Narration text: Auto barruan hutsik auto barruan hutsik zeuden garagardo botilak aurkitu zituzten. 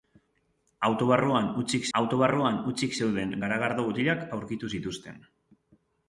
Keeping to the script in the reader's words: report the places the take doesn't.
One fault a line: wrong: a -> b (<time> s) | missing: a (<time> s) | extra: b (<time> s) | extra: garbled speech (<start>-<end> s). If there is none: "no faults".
no faults